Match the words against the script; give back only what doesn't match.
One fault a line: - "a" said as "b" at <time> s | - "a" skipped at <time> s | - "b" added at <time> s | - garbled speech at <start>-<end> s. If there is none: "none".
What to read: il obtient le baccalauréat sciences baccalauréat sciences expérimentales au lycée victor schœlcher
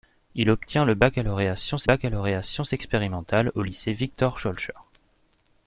none